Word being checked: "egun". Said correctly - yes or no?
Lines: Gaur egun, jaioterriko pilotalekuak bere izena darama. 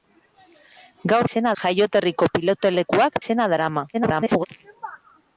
no